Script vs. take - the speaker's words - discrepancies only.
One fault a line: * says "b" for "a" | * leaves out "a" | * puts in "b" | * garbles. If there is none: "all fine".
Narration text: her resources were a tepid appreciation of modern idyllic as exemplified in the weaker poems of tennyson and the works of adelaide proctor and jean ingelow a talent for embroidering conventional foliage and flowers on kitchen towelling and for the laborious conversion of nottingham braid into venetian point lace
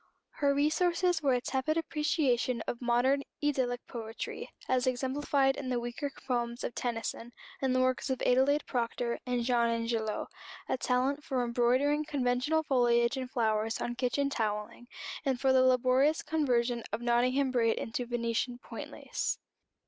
* puts in "poetry"